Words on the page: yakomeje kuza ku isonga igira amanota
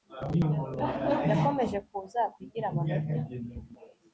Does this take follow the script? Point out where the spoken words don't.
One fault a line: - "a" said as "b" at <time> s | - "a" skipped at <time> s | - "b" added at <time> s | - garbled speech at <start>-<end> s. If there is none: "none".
- "isonga" skipped at 2.4 s